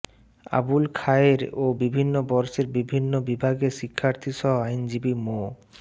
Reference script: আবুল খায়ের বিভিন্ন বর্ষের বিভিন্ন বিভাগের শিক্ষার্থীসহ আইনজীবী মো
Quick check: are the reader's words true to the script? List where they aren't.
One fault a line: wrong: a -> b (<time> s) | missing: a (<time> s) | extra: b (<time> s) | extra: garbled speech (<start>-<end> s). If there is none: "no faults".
extra: ও (1.6 s)